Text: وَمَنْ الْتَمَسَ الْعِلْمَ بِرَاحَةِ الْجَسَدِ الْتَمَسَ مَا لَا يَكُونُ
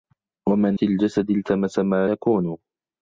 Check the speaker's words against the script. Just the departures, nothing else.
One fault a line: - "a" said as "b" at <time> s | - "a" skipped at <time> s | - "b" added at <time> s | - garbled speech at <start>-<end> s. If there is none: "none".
- "الْتَمَسَ الْعِلْمَ بِرَاحَةِ" skipped at 0.8 s
- "لَا" skipped at 2.1 s